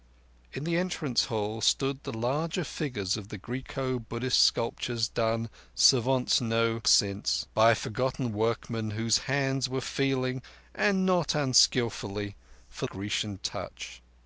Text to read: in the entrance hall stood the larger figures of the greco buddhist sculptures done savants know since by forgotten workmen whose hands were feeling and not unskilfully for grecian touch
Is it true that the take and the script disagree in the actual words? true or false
false